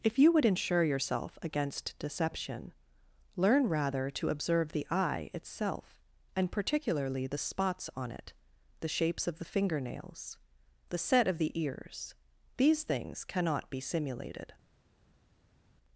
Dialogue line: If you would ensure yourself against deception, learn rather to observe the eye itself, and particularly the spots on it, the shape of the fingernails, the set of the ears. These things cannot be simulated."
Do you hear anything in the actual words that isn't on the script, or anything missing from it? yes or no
yes